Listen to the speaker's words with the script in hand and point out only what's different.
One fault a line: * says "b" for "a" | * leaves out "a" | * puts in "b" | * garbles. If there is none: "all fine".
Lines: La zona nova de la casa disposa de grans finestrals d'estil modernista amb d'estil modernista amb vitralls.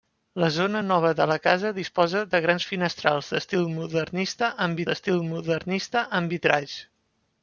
all fine